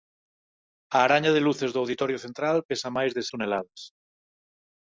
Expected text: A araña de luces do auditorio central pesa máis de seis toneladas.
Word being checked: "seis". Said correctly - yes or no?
no